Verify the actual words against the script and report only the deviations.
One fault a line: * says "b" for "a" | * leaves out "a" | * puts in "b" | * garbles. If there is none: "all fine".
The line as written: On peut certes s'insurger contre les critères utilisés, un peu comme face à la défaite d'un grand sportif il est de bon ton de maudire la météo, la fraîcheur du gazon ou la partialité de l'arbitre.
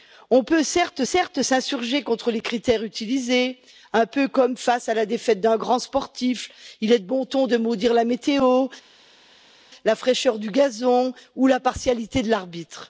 * puts in "certes"